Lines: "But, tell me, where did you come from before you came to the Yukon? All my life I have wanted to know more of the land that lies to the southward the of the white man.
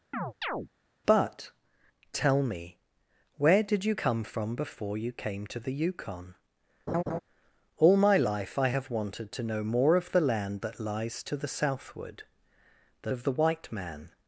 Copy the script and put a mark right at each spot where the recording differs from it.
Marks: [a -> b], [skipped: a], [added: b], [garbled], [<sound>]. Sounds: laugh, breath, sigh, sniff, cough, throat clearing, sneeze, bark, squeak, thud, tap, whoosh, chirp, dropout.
[chirp] "But, tell me, where did you come from before you came to the Yukon? [laugh] All my life I have wanted to know more of the land that lies to the southward the of the white man.